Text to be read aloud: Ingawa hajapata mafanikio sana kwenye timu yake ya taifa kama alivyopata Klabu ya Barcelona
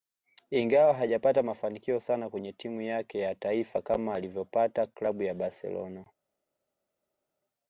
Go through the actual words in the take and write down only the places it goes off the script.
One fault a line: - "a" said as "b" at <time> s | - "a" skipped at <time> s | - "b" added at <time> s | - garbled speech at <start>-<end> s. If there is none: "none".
none